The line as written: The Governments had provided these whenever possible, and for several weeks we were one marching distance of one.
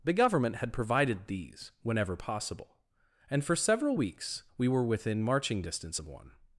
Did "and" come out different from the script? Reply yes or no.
no